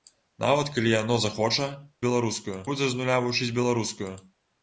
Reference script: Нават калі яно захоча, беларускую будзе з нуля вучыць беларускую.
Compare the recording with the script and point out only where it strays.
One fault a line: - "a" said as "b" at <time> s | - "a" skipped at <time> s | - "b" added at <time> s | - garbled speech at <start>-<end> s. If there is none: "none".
none